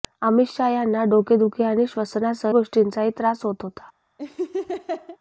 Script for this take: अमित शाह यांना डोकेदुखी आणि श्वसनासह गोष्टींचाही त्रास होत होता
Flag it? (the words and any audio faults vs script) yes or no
yes